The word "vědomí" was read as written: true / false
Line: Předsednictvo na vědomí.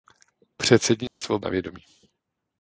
true